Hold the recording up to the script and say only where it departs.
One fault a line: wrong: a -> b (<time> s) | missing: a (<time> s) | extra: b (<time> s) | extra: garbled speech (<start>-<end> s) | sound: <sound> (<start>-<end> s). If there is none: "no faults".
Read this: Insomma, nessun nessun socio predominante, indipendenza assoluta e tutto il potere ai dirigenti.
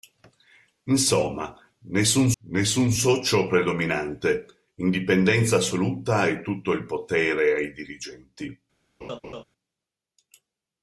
sound: laugh (9.0-9.4 s)